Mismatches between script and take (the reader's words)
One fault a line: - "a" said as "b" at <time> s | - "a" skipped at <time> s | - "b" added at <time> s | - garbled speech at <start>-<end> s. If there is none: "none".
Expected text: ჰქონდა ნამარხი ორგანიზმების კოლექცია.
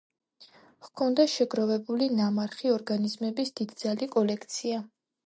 - "შეგროვებული" added at 1.3 s
- "დიდძალი" added at 3.6 s